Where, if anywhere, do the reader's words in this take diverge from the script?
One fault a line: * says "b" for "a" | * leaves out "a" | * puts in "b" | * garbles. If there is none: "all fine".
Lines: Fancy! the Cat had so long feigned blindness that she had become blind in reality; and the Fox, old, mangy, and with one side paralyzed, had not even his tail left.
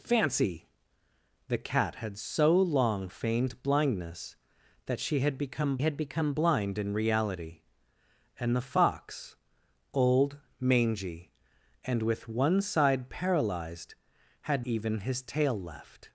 * puts in "had become"
* leaves out "not"